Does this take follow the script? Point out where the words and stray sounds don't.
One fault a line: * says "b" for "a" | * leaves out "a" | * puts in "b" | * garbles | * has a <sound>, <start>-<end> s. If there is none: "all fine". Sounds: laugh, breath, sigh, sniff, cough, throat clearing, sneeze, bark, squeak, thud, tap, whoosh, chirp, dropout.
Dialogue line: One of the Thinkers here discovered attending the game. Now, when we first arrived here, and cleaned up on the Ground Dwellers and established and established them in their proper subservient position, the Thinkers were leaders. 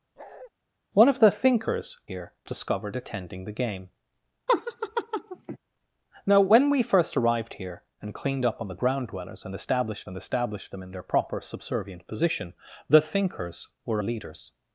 * has a bark, 0.2-0.5 s
* has a laugh, 4.5-5.6 s